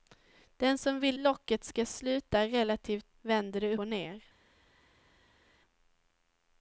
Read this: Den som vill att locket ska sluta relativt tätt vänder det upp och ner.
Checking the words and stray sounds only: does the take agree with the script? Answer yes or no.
no